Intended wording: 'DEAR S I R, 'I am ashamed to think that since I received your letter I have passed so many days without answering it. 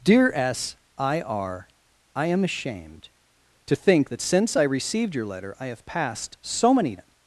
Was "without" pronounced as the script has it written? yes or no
no